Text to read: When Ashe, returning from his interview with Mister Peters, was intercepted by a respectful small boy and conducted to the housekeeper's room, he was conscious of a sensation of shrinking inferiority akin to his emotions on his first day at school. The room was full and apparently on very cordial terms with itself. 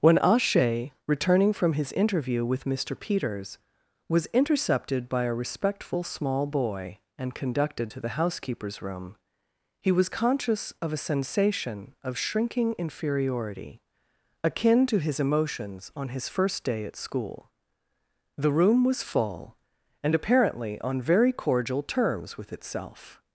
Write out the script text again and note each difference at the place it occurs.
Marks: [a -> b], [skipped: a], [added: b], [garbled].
When Ashe, returning from his interview with Mister Peters, was intercepted by a respectful small boy and conducted to the housekeeper's room, he was conscious of a sensation of shrinking inferiority akin to his emotions on his first day at school. The room was full and apparently on very cordial terms with itself.